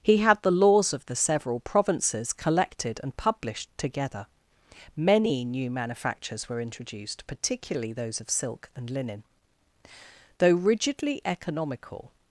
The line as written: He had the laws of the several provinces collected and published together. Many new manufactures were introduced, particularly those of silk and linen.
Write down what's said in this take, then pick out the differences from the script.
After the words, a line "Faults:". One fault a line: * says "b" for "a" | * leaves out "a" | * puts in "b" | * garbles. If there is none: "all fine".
He had the laws of the several provinces collected and published together. Many new manufactures were introduced, particularly those of silk and linen. Though rigidly economical
Faults:
* puts in "Though rigidly economical"